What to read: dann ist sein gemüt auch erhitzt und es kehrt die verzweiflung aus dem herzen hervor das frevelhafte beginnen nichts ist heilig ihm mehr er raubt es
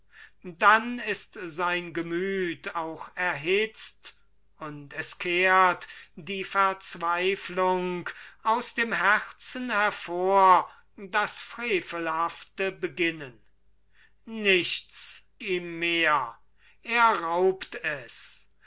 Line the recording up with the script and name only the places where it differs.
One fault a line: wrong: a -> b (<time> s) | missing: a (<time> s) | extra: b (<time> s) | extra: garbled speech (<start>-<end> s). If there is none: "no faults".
missing: ist heilig (15.2 s)